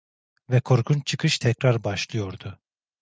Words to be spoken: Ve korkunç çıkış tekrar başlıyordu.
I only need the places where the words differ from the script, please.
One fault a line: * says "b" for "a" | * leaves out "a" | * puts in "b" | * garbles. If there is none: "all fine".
all fine